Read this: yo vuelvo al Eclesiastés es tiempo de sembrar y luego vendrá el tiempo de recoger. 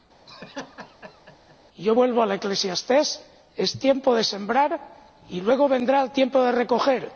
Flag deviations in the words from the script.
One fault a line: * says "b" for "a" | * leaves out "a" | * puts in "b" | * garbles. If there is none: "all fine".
all fine